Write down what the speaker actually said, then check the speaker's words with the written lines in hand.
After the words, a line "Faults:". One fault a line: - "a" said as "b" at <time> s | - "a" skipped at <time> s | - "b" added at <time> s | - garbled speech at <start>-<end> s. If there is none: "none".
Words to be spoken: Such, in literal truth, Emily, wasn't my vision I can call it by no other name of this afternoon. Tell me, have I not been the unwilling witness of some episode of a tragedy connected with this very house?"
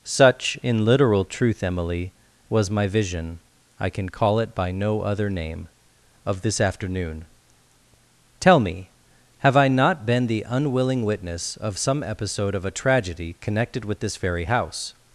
Such, in literal truth, Emily, was my vision I can call it by no other name of this afternoon. Tell me, have I not been the unwilling witness of some episode of a tragedy connected with this very house?"
Faults:
- "wasn't" said as "was" at 2.5 s